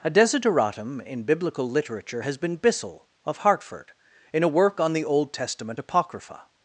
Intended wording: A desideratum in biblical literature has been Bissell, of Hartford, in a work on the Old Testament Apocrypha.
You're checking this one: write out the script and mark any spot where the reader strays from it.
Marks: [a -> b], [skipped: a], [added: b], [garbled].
A desideratum in biblical literature has been Bissell, of Hartford, in a work on the Old Testament Apocrypha.